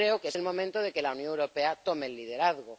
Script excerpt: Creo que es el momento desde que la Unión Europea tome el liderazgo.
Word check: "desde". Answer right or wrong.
wrong